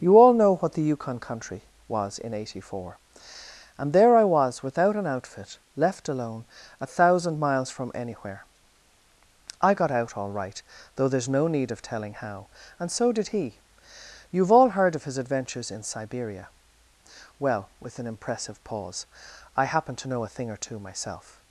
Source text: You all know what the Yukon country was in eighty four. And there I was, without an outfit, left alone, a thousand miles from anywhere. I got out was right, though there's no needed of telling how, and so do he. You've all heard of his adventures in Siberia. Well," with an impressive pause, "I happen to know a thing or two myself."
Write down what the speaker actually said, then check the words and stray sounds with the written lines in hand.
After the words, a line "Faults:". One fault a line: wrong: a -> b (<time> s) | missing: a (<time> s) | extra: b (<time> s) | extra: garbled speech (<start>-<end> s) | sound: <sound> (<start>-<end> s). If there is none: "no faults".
You all know what the Yukon country was in eighty four. And there I was, without an outfit, left alone, a thousand miles from anywhere. I got out all right, though there's no need of telling how, and so did he. You've all heard of his adventures in Siberia. Well," with an impressive pause, "I happen to know a thing or two myself."
Faults:
wrong: was -> all (10.2 s)
wrong: needed -> need (11.5 s)
wrong: do -> did (13.1 s)